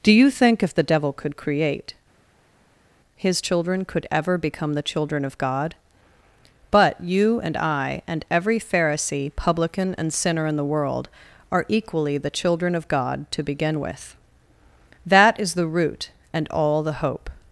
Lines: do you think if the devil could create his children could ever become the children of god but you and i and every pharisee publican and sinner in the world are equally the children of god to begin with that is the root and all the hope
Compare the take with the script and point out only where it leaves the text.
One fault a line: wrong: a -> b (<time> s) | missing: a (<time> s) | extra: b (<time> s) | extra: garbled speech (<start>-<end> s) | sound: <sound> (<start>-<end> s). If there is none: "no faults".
no faults